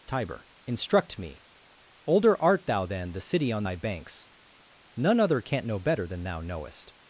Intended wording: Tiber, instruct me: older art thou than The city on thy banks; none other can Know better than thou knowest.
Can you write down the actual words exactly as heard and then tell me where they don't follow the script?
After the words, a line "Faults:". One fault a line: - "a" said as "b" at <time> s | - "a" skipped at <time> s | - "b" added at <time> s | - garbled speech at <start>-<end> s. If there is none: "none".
Tiber, instruct me: older art thou than The city on thy banks; none other can't Know better than thou knowest.
Faults:
- "can" said as "can't" at 5.4 s